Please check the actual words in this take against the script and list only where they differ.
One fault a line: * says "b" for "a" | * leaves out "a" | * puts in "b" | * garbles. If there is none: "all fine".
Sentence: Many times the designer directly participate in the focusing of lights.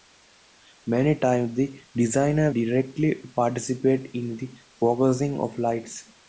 all fine